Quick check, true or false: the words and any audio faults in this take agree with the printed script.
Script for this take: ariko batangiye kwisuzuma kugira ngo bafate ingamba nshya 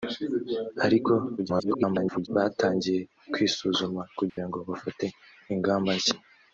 false